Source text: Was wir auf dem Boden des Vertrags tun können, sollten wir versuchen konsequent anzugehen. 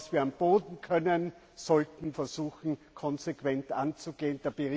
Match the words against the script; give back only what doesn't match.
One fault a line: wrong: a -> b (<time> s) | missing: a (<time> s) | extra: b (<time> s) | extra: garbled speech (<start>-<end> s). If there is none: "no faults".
missing: des Vertrags tun (0.8 s)
missing: wir (2.1 s)